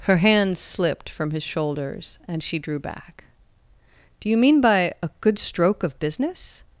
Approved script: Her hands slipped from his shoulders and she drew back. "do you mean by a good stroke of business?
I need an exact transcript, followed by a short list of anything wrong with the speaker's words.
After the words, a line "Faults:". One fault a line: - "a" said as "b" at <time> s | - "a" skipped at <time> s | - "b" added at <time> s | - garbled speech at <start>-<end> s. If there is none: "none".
Her hands slipped from his shoulders and she drew back. "do you mean by a good stroke of business?
Faults:
none